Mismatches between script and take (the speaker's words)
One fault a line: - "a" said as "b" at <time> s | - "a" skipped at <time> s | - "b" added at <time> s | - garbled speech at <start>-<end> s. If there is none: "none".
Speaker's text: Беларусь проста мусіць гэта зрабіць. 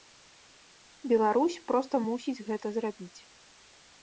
none